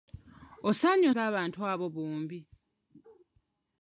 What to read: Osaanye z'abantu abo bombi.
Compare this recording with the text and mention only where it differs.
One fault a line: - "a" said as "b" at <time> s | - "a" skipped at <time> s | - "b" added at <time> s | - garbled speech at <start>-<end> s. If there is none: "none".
none